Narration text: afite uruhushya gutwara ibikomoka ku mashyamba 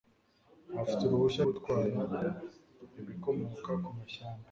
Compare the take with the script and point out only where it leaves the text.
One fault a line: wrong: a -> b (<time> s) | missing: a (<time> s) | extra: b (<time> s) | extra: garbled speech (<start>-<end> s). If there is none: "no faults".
no faults